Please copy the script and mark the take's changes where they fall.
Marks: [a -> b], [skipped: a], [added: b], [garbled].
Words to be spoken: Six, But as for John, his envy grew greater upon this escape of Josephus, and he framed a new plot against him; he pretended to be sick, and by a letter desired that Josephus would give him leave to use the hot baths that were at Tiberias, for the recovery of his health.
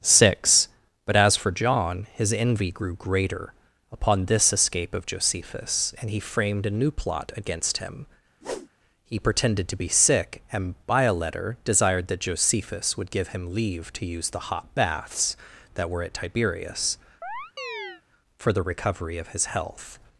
Six, But as for John, his envy grew greater upon this escape of Josephus, and he framed a new plot against him; he pretended to be sick, and by a letter desired that Josephus would give him leave to use the hot baths that were at Tiberias, for the recovery of his health.